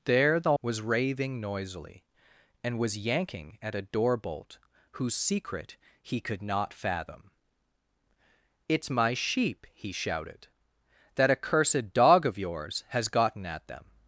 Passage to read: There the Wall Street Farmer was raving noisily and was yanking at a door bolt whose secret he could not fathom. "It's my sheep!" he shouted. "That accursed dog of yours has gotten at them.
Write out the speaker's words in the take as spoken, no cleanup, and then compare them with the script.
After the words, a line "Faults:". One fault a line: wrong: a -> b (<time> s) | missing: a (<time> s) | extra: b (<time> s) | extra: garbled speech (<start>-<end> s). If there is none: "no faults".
There the Was raving noisily and was yanking at a door bolt whose secret he could not fathom. "It's my sheep!" he shouted. "That accursed dog of yours has gotten at them.
Faults:
missing: Wall Street Farmer (0.5 s)